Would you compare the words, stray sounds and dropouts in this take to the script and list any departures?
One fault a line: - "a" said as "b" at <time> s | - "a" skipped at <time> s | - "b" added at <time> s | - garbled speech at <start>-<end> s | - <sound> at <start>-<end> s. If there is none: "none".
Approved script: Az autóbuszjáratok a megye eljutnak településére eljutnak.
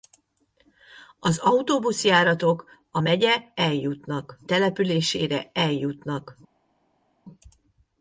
none